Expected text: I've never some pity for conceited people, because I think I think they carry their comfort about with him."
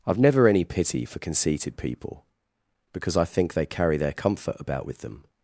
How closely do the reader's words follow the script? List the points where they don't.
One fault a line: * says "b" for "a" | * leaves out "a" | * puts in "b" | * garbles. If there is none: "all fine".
* says "any" for "some"
* leaves out "I think"
* says "them" for "him"